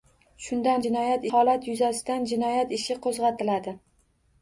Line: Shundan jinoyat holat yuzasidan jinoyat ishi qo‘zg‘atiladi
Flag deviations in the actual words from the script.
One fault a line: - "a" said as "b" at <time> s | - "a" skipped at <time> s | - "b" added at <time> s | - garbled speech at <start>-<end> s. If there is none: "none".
none